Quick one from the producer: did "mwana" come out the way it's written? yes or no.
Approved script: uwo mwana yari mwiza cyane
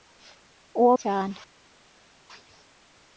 no